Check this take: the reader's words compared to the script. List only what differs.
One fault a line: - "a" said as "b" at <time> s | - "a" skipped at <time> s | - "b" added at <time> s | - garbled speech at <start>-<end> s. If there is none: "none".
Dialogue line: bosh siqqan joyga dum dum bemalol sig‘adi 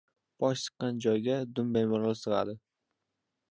- "dum" skipped at 1.7 s